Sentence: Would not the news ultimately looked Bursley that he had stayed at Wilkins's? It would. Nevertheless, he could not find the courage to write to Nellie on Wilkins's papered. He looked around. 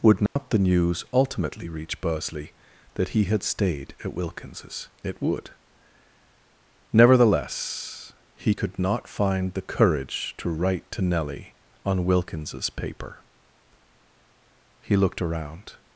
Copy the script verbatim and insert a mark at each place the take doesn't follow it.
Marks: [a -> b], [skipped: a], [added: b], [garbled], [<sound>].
Would not [dropout] the news ultimately [looked -> reach] Bursley that he had stayed at Wilkins's? It would. Nevertheless, he could not find the courage to write to Nellie on Wilkins's [papered. -> paper] He looked around.